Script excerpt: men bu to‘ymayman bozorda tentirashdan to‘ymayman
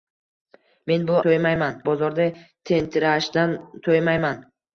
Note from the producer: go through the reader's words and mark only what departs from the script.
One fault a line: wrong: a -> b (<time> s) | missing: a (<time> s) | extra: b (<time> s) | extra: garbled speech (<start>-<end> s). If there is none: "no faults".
no faults